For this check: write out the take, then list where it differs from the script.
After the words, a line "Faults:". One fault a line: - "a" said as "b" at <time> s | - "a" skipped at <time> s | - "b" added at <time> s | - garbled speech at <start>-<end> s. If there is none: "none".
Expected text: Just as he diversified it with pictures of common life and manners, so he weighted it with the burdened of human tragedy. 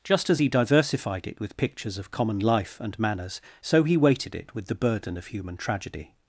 Just as he diversified it with pictures of common life and manners, so he weighted it with the burden of human tragedy.
Faults:
- "burdened" said as "burden" at 4.7 s